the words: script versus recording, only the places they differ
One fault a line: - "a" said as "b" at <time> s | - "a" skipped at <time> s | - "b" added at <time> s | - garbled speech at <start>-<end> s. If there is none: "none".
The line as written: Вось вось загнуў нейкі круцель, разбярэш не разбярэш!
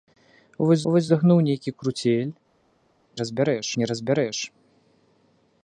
none